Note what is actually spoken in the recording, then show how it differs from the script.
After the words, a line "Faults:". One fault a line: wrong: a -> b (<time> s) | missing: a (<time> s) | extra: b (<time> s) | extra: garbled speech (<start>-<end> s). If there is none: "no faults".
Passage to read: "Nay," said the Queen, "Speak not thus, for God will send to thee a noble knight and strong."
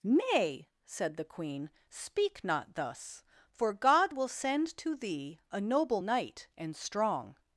"Nay," said the Queen, "Speak not thus, for God will send to thee a noble knight and strong."
Faults:
no faults